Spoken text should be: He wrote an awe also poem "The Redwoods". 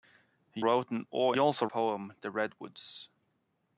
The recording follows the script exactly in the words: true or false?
true